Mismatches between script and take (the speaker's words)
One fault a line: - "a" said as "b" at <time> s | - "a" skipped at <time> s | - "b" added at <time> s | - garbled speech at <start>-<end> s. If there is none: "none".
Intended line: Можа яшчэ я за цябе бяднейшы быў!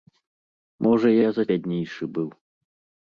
- "яшчэ" skipped at 1.1 s
- "цябе" skipped at 1.4 s